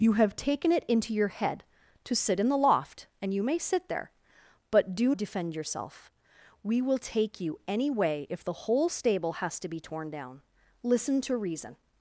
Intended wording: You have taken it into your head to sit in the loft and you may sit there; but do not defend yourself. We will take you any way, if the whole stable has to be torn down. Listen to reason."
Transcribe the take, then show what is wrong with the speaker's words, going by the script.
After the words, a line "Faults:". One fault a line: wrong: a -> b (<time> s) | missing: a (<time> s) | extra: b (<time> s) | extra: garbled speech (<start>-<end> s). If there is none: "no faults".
You have taken it into your head to sit in the loft and you may sit there; but do defend yourself. We will take you any way, if the whole stable has to be torn down. Listen to reason."
Faults:
missing: not (5.1 s)